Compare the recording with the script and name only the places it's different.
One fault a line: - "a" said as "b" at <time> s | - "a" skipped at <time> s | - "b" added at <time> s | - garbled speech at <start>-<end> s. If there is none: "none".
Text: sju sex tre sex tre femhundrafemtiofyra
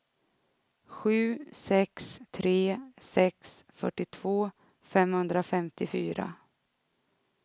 - "tre" said as "fyrtiotvå" at 3.7 s